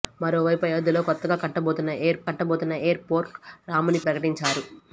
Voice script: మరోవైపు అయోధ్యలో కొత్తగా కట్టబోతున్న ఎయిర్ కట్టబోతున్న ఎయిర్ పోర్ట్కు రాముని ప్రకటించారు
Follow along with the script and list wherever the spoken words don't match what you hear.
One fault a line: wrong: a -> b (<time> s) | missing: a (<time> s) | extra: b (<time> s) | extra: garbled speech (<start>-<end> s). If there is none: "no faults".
no faults